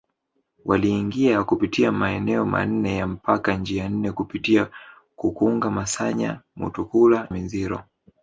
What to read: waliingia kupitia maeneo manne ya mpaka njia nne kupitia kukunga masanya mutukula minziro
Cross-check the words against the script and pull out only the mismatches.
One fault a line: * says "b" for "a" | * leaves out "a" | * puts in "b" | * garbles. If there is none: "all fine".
all fine